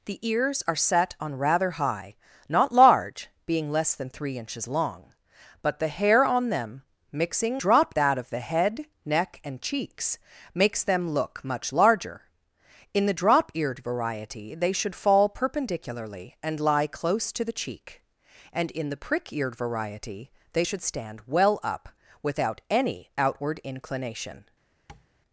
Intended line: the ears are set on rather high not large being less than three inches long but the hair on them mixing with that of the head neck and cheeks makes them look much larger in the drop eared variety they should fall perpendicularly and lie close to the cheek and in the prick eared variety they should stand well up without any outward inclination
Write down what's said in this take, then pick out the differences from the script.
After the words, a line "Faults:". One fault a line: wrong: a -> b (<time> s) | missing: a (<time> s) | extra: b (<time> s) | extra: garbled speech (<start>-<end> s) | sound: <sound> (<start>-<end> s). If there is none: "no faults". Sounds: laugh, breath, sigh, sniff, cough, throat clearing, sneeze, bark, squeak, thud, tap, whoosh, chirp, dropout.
the ears are set on rather high not large being less than three inches long but the hair on them mixing drop that of the head neck and cheeks makes them look much larger in the drop eared variety they should fall perpendicularly and lie close to the cheek and in the prick eared variety they should stand well up without any outward inclination
Faults:
wrong: with -> drop (7.6 s)
sound: tap (24.9-25.1 s)